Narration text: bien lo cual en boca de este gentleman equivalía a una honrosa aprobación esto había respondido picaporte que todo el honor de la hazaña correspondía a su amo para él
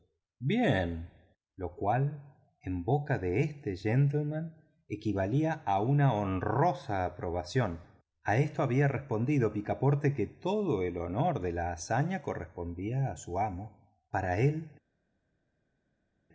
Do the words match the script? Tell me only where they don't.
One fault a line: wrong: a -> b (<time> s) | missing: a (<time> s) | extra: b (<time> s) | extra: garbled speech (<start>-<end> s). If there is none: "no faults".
extra: a (8.2 s)